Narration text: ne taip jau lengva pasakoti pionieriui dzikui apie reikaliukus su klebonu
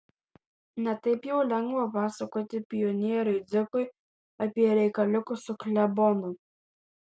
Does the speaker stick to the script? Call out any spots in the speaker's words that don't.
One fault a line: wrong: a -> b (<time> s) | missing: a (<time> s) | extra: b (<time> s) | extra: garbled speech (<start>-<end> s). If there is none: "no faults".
no faults